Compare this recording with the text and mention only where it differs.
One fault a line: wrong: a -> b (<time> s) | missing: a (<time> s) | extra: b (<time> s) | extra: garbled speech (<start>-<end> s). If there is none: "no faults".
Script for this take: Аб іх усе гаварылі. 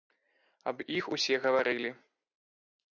no faults